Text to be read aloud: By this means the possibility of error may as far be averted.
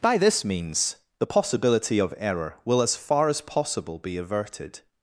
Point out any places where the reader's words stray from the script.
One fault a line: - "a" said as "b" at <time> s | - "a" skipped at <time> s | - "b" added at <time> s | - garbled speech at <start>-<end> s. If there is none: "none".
- "may" said as "will" at 2.6 s
- "as possible" added at 3.3 s